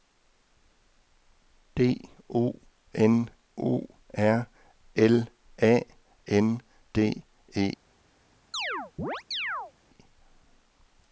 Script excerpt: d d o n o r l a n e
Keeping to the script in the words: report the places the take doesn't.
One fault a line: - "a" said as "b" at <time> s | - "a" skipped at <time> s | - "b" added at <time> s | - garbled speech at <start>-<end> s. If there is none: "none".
- "d" skipped at 2.1 s
- "d" added at 6.9 s